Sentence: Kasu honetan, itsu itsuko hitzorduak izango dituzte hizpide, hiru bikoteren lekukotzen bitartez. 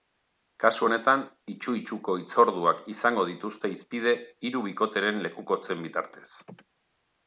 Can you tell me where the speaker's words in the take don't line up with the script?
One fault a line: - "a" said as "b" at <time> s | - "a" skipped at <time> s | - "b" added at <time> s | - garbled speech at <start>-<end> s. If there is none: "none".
none